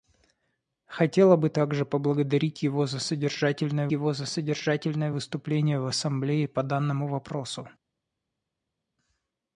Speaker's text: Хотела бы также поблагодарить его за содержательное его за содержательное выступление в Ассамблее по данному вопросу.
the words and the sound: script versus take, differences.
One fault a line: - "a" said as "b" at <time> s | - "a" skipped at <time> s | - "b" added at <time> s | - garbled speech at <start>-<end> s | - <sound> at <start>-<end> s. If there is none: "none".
none